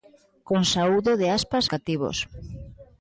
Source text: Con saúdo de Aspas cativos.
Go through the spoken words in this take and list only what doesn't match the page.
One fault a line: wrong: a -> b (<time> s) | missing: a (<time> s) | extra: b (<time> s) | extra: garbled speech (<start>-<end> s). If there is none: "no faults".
no faults